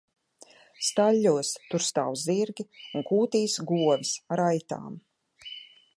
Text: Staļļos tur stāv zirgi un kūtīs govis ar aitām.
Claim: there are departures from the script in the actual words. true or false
false